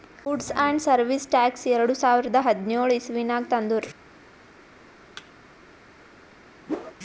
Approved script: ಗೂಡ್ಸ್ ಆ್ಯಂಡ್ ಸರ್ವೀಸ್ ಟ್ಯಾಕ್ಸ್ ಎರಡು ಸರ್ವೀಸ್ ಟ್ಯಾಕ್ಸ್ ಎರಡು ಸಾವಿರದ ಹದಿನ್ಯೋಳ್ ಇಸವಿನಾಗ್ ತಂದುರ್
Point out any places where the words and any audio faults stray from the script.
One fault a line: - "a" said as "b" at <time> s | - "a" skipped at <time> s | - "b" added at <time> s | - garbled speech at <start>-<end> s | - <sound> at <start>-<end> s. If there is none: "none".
- "ಸರ್ವೀಸ್ ಟ್ಯಾಕ್ಸ್ ಎರಡು" skipped at 1.9 s
- thud at 5.2-5.3 s
- whoosh at 6.7-7.0 s